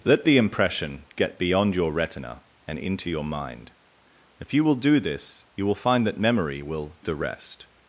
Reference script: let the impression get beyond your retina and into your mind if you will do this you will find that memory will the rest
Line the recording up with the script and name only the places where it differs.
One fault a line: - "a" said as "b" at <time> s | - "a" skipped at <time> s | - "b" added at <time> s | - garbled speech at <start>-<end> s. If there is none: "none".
none